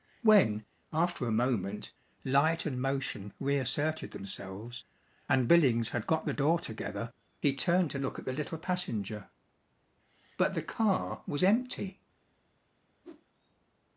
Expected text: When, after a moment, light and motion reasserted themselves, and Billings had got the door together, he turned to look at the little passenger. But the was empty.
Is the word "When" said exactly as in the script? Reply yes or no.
yes